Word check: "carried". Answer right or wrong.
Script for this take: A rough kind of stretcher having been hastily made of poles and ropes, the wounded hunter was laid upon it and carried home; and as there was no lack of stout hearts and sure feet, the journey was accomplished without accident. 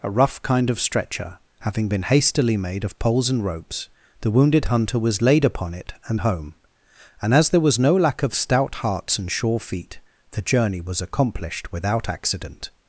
wrong